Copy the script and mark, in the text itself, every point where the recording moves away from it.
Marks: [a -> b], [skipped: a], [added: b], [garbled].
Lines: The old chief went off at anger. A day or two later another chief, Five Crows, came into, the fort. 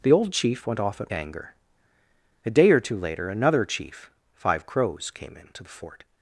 The old chief went off at anger. A day or two later another chief, Five Crows, came into, the fort.